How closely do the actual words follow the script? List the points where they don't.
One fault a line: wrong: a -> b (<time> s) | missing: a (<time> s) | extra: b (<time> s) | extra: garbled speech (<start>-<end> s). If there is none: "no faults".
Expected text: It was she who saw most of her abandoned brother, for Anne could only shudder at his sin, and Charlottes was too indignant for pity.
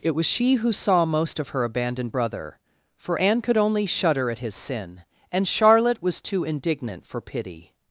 wrong: Charlottes -> Charlotte (5.5 s)